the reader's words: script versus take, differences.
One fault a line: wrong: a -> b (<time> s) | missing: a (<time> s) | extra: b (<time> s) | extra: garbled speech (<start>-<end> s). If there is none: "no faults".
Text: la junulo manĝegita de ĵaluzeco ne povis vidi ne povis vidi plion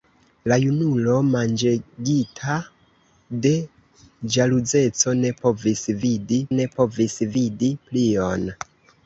no faults